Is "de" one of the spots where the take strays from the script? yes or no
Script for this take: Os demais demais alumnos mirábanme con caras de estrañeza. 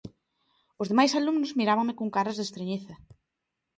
no